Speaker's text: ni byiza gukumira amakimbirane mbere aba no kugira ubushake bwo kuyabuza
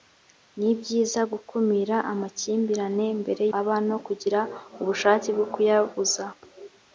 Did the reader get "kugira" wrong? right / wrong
right